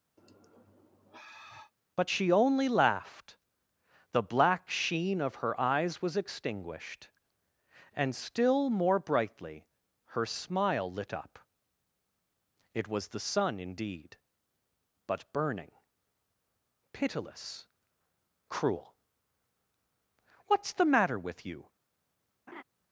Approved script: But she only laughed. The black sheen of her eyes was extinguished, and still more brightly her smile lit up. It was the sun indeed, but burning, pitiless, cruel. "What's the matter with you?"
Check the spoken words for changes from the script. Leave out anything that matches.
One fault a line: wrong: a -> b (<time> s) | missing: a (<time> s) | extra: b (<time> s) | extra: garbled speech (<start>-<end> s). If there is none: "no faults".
no faults